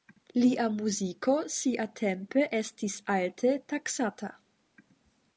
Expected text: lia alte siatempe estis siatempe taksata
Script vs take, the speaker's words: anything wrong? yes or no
yes